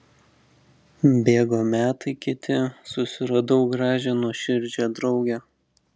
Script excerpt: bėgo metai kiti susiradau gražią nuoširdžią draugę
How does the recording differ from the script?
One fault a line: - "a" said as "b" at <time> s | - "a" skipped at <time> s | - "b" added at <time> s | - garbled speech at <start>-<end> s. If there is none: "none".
none